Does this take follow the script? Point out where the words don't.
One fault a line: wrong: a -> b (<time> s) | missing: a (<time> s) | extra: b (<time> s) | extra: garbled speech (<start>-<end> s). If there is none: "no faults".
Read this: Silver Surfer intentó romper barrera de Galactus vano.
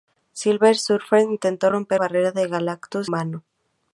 no faults